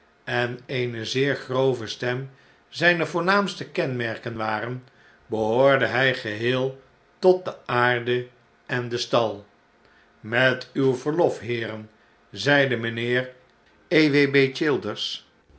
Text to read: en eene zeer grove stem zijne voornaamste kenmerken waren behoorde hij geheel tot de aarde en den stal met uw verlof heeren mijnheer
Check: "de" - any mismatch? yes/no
no